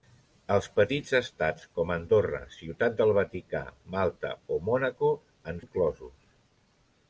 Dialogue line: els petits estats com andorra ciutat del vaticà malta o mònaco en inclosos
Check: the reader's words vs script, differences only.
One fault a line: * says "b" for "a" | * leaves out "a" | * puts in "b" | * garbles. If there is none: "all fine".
all fine